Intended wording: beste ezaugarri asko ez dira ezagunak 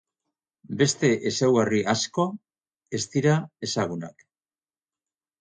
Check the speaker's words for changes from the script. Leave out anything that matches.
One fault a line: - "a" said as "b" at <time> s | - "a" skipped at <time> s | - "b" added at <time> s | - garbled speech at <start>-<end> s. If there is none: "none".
none